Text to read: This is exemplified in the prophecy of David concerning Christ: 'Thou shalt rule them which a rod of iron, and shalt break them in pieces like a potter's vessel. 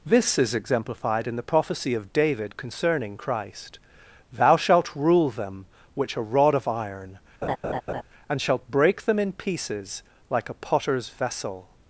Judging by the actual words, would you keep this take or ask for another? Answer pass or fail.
pass